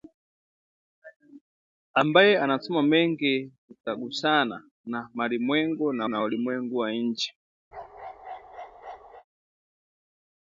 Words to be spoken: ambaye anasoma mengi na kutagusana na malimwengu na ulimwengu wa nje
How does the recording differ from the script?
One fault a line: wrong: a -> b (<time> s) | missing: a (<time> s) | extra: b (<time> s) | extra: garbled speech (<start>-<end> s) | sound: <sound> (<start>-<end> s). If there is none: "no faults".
missing: na (3.5 s)
extra: na (6.0 s)
sound: bark (7.7-9.2 s)